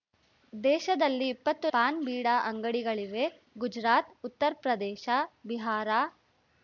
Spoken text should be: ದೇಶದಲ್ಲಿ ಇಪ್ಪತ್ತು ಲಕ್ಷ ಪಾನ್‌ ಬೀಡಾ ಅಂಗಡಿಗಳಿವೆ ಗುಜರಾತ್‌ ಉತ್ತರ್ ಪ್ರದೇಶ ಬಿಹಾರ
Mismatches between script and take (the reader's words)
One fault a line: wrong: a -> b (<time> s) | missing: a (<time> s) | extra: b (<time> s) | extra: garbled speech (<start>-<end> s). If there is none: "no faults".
missing: ಲಕ್ಷ (1.7 s)